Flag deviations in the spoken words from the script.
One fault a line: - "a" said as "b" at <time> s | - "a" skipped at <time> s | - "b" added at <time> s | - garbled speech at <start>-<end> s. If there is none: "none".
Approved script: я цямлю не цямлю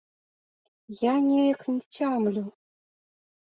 - "цямлю" said as "неяк" at 1.3 s